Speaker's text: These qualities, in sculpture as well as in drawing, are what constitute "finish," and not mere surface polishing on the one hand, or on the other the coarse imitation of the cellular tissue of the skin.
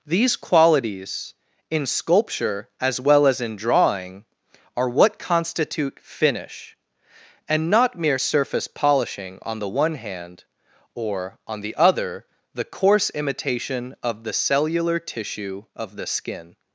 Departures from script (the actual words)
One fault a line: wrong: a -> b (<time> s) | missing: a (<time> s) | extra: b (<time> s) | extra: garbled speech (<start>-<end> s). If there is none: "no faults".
no faults